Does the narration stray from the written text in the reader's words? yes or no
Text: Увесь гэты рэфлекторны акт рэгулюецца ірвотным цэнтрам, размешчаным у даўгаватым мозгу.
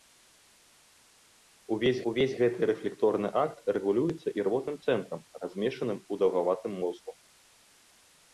yes